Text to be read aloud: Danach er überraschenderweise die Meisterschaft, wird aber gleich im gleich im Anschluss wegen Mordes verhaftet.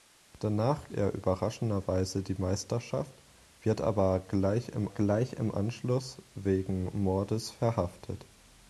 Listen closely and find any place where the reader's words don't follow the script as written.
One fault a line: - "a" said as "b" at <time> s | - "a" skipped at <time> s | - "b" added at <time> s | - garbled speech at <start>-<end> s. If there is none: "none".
none